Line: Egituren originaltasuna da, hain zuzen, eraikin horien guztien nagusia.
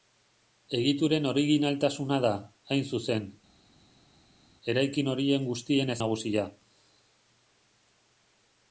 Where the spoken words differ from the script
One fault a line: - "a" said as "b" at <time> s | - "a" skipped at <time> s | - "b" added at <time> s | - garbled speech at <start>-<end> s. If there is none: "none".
none